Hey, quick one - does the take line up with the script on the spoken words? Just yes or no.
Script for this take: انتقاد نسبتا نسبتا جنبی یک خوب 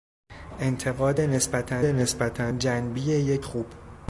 yes